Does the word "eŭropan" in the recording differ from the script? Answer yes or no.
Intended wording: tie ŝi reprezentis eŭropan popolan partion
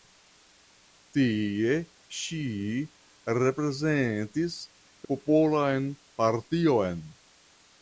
yes